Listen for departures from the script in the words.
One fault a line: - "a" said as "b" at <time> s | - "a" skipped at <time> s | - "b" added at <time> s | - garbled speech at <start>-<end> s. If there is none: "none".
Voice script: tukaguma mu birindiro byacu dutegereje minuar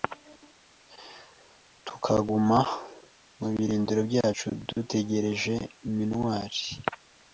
none